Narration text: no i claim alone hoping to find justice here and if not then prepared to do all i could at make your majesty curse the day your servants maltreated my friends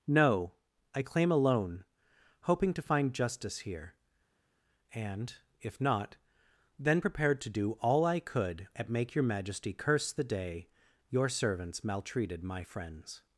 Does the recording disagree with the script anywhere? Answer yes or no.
no